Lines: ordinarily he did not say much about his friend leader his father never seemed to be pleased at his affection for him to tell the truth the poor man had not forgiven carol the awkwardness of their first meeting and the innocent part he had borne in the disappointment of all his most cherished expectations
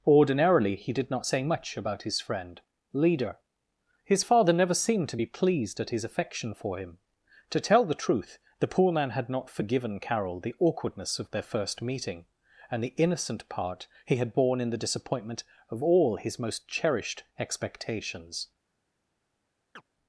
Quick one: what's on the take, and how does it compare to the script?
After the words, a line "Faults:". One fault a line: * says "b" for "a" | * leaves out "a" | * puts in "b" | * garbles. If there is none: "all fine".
ordinarily he did not say much about his friend leader his father never seemed to be pleased at his affection for him to tell the truth the poor man had not forgiven carol the awkwardness of their first meeting and the innocent part he had borne in the disappointment of all his most cherished expectations
Faults:
all fine